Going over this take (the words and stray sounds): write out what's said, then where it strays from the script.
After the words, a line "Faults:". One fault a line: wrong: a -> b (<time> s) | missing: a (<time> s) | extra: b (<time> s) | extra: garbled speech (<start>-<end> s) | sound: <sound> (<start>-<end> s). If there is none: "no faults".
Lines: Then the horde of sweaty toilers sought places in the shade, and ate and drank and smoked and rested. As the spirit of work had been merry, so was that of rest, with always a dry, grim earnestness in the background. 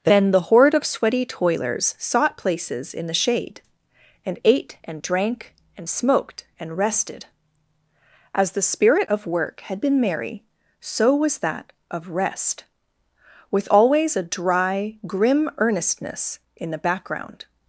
Then the horde of sweaty toilers sought places in the shade, and ate and drank and smoked and rested. As the spirit of work had been merry, so was that of rest, with always a dry, grim earnestness in the background.
Faults:
no faults